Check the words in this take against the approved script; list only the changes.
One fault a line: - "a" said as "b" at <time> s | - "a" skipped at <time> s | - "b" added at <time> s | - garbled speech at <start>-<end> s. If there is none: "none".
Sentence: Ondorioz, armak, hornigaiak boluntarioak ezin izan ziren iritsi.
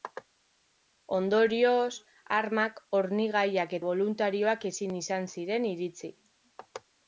none